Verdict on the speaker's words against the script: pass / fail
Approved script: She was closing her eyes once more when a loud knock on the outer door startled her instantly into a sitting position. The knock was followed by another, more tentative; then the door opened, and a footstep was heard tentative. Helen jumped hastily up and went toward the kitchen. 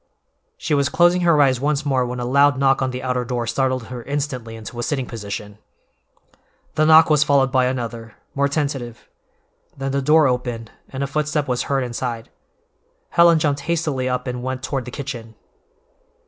fail